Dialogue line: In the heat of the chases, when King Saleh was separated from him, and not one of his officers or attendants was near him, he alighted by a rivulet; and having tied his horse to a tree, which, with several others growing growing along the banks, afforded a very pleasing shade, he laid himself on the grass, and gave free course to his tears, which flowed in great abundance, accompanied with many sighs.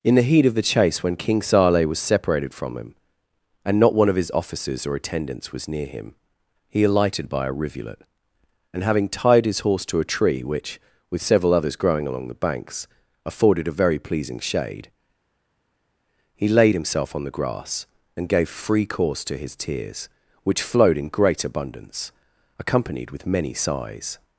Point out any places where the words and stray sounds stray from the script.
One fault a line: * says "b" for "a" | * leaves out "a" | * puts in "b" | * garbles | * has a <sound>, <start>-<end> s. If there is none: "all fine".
* says "chase" for "chases"
* leaves out "growing"